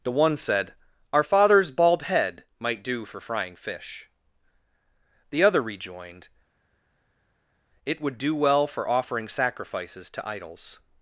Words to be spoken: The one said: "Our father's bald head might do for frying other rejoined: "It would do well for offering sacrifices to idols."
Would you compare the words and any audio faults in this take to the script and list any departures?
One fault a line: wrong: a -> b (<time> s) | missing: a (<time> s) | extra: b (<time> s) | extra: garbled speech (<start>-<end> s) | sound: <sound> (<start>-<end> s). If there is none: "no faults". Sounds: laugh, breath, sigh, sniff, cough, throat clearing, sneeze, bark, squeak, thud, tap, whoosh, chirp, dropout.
extra: fish The (3.6 s)